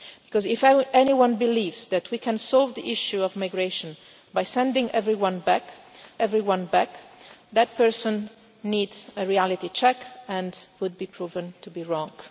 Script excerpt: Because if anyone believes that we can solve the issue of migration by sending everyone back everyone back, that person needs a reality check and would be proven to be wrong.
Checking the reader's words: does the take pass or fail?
pass